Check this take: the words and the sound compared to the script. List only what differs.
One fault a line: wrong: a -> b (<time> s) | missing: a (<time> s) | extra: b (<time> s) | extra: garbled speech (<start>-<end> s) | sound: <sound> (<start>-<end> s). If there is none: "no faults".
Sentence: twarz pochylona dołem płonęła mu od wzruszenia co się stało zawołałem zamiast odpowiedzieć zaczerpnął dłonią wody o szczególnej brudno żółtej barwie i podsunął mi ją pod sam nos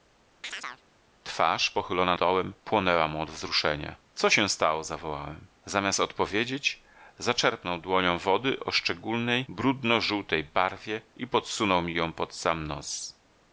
sound: chirp (0.4-0.8 s)